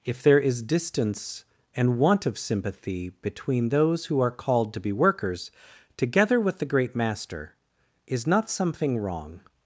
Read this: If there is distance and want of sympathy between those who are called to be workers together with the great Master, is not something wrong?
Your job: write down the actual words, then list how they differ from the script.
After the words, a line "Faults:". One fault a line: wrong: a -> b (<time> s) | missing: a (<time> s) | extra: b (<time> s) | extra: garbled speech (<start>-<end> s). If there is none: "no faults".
If there is distance and want of sympathy between those who are called to be workers together with the great Master, is not something wrong?
Faults:
no faults